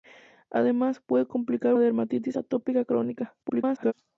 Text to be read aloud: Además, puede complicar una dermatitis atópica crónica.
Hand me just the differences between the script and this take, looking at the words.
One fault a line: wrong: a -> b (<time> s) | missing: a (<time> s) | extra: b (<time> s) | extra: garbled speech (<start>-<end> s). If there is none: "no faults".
missing: una (1.8 s)
extra: garbled speech (3.4-3.9 s)